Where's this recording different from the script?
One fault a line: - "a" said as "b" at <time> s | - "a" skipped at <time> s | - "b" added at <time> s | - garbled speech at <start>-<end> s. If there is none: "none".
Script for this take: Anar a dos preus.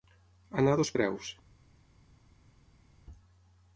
none